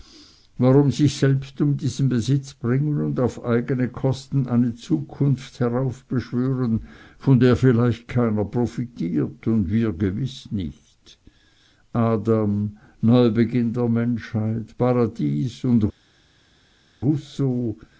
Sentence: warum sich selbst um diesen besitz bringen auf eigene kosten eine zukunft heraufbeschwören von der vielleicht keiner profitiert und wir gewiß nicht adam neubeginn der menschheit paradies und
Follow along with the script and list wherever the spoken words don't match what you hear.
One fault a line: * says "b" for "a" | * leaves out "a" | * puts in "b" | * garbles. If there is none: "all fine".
* puts in "und"